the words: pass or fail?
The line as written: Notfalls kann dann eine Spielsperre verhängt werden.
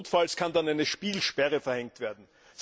pass